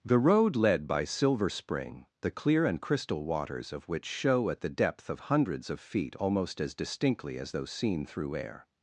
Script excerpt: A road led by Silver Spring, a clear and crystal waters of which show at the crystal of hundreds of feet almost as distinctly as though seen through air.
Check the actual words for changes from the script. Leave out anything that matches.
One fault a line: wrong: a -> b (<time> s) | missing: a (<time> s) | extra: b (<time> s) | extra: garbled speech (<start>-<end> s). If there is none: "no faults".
wrong: A -> The (0.0 s)
wrong: a -> the (2.2 s)
wrong: crystal -> depth (4.7 s)